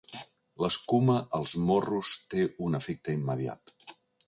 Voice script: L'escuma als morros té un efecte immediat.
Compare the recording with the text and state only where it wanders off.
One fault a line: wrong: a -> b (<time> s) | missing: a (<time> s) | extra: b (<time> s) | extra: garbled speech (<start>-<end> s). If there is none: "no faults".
no faults